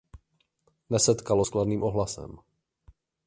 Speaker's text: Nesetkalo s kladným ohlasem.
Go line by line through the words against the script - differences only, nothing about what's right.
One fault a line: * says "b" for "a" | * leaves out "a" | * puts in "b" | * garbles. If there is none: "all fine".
all fine